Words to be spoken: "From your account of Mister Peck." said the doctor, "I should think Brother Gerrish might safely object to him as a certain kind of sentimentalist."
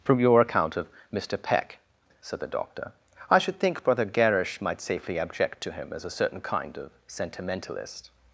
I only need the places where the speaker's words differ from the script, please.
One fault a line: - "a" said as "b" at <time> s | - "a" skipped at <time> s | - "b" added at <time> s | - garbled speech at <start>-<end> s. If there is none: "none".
none